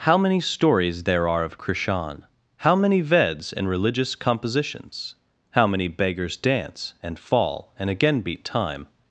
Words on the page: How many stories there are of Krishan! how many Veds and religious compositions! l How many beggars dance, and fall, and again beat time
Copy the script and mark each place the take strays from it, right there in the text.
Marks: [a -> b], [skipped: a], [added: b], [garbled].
How many stories there are of Krishan! how many Veds and religious compositions! [skipped: l] How many beggars dance, and fall, and again beat time